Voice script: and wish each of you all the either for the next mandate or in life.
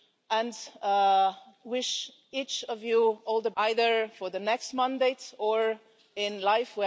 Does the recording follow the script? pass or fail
pass